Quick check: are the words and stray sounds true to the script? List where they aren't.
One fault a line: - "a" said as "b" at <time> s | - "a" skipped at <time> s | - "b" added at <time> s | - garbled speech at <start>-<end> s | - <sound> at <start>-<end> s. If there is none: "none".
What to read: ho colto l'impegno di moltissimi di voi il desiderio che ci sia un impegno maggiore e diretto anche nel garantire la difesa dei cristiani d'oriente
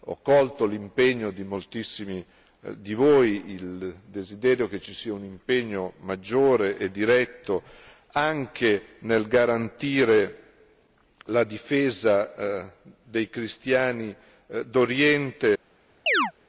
- chirp at 16.1-16.3 s